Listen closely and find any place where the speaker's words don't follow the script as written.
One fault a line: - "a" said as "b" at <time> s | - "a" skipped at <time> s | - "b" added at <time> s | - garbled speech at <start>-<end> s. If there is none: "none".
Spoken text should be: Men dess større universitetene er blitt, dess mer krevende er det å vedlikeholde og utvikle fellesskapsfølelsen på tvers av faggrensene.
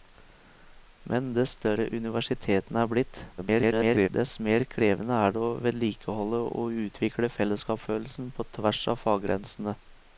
- garbled speech at 3.4-4.1 s